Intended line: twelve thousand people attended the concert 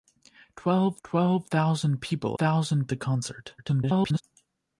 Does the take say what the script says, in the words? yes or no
no